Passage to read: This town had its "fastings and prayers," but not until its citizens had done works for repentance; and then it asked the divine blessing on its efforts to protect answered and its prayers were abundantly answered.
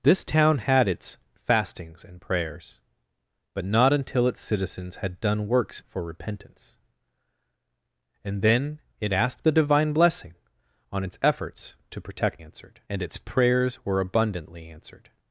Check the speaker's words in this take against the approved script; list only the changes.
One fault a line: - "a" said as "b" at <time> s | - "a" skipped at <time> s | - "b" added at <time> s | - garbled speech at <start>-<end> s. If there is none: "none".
none